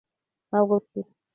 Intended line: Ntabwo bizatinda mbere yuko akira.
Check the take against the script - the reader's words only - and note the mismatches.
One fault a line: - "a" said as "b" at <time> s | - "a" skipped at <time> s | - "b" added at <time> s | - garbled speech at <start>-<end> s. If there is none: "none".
- "bizatinda mbere yuko" skipped at 0.7 s